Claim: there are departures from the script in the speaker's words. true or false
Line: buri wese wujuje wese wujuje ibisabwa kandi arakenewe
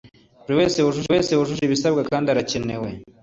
false